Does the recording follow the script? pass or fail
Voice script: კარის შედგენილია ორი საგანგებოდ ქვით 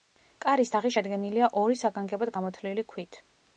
fail